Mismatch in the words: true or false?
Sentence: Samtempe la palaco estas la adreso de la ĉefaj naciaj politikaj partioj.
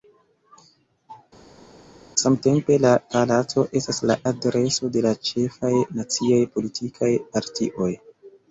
false